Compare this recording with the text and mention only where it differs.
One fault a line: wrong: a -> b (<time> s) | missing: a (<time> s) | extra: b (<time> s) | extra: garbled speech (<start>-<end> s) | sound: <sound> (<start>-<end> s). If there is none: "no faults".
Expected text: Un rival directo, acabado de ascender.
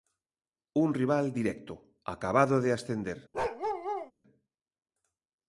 sound: bark (3.3-4.1 s)